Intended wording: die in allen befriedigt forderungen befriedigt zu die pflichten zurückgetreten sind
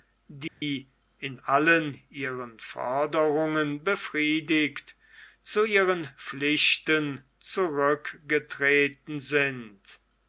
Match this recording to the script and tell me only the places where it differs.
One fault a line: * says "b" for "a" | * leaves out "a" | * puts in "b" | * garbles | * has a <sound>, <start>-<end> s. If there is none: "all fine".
* has a dropout, 0.5-0.6 s
* says "ihren" for "befriedigt"
* says "ihren" for "die"